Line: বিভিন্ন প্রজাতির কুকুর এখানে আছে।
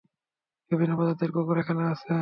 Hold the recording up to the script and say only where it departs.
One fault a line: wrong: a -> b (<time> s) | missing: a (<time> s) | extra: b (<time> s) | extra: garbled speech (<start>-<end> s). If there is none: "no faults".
no faults